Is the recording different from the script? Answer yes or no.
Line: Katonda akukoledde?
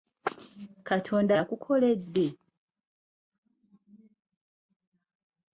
no